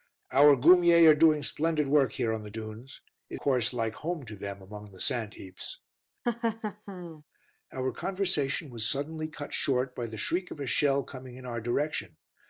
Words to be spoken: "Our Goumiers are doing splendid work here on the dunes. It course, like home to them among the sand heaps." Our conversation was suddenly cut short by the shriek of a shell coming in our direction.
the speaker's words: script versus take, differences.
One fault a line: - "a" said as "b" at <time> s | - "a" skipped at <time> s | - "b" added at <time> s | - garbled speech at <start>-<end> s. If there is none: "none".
none